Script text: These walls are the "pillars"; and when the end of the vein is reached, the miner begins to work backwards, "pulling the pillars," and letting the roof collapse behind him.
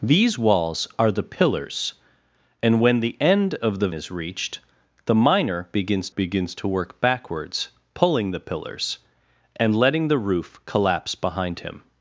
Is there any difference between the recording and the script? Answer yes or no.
yes